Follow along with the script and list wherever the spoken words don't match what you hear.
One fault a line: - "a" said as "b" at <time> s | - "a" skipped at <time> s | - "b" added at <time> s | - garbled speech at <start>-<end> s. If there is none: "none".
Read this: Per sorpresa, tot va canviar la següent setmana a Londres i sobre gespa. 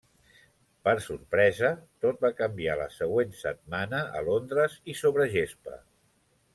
none